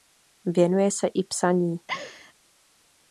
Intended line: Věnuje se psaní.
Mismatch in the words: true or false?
true